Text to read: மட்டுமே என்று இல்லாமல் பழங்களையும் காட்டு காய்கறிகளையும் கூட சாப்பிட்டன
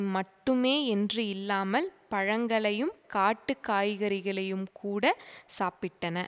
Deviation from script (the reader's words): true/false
false